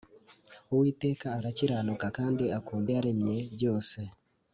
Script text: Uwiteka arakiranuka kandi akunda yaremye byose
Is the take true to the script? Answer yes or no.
yes